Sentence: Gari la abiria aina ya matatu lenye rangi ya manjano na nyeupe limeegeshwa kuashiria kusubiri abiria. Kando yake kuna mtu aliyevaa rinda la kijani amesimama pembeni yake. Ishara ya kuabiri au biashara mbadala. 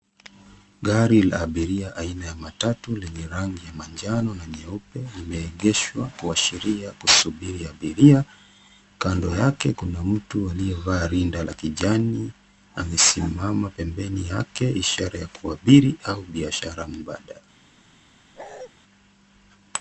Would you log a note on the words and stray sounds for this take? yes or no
yes